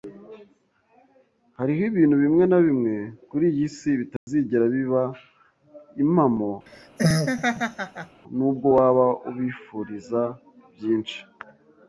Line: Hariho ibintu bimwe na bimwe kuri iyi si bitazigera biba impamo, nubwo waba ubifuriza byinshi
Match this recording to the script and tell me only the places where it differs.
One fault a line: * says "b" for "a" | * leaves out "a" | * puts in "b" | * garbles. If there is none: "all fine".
all fine